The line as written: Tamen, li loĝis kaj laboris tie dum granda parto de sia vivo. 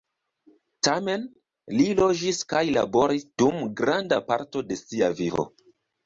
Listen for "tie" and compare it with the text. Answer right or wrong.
wrong